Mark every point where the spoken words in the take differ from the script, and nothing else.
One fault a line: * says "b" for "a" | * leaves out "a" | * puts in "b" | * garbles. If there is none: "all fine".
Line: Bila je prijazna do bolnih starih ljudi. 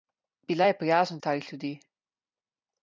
* leaves out "do bolnih"